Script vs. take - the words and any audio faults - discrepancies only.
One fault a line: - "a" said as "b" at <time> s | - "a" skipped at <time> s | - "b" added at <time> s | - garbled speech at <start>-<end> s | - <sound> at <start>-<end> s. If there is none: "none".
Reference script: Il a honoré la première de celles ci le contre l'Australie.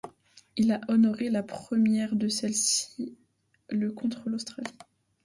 none